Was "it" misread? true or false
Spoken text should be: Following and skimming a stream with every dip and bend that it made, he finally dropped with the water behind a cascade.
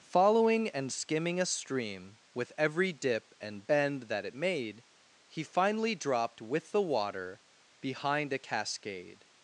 false